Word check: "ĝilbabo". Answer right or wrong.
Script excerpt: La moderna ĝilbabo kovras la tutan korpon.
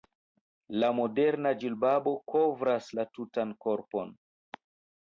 right